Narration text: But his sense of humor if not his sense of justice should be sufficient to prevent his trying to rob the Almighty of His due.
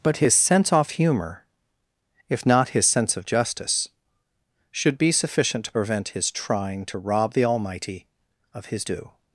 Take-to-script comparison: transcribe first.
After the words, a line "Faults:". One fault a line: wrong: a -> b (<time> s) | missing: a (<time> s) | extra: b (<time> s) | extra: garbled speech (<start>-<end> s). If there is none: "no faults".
But his sense off humor if not his sense of justice should be sufficient to prevent his trying to rob the Almighty of His due.
Faults:
wrong: of -> off (0.7 s)